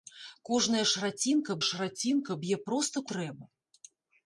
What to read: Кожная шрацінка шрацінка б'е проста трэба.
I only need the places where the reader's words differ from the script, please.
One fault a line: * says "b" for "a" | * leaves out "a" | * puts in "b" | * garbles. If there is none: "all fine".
all fine